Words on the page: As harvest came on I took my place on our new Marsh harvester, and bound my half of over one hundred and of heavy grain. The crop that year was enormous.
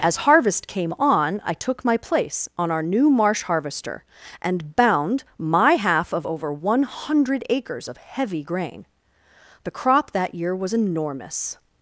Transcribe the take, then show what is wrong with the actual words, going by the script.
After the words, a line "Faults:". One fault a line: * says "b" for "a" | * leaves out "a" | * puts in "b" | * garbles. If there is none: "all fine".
As harvest came on I took my place on our new Marsh harvester, and bound my half of over one hundred acres of heavy grain. The crop that year was enormous.
Faults:
* says "acres" for "and"